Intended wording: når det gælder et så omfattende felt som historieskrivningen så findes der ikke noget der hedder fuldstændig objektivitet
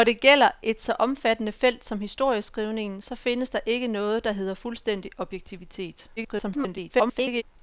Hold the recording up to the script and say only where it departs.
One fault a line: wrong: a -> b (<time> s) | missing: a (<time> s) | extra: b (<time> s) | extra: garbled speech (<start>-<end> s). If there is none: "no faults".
extra: garbled speech (6.2-7.4 s)